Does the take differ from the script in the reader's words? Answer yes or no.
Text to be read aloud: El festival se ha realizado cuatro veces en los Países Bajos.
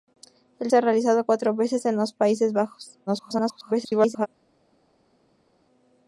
yes